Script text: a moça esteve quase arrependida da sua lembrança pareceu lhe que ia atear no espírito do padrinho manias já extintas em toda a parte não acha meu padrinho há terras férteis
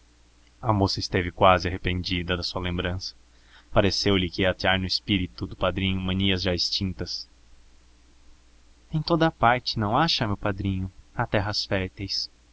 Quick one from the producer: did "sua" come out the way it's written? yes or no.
yes